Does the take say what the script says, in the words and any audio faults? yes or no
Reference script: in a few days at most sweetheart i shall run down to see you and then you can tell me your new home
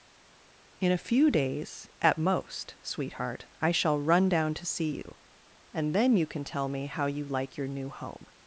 no